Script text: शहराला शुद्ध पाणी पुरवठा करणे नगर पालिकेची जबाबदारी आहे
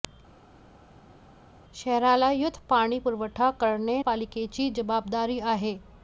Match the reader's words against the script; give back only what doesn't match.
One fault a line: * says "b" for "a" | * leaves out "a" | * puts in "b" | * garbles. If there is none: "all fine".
* leaves out "नगर"